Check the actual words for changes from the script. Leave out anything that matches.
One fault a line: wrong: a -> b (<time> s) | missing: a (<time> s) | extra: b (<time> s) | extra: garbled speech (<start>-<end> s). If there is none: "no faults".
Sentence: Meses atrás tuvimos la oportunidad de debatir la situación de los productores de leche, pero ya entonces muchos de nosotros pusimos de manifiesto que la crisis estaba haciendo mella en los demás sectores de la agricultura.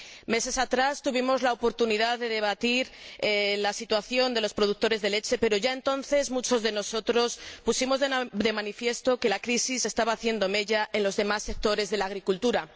no faults